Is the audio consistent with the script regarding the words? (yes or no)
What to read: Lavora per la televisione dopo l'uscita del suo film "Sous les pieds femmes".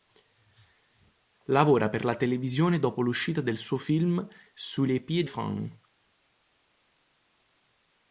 yes